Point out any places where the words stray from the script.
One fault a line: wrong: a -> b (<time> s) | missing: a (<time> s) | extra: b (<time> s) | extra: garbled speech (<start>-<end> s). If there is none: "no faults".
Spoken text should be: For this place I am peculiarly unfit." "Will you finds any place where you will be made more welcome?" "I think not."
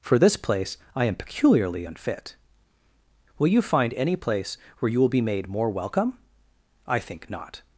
wrong: finds -> find (3.6 s)